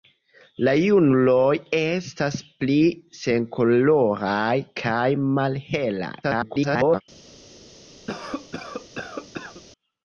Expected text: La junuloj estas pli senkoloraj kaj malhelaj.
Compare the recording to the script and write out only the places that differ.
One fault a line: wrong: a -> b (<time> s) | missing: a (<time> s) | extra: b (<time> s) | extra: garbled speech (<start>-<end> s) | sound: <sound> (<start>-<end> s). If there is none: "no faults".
extra: garbled speech (6.2-7.0 s)
sound: cough (8.1-9.6 s)